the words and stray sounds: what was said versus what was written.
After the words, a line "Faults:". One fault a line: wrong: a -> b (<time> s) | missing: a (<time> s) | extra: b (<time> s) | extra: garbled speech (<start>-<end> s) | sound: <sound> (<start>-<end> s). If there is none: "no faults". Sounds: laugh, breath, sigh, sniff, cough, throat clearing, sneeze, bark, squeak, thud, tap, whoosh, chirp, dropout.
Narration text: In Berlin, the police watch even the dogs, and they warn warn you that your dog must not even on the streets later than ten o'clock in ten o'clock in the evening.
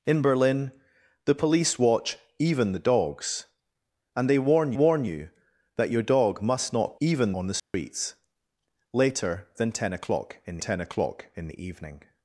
In Berlin, the police watch even the dogs, and they warn warn you that your dog must not even on the streets later than ten o'clock in ten o'clock in the evening.
Faults:
sound: dropout (7.6-7.7 s)